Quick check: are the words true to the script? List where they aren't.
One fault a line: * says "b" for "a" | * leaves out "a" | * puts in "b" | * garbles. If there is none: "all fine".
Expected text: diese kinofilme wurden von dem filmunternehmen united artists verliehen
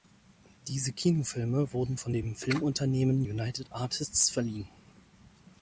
all fine